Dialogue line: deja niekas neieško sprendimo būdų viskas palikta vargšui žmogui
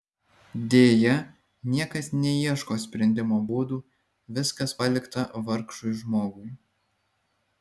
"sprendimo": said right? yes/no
yes